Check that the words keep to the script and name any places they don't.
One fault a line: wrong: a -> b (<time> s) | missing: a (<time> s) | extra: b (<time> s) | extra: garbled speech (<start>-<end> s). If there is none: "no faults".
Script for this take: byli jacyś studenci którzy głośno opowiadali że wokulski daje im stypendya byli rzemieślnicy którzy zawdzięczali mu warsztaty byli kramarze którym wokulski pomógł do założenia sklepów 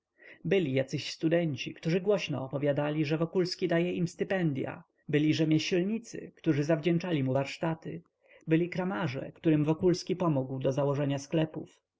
no faults